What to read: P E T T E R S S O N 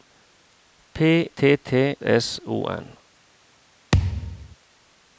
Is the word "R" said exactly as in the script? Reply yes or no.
no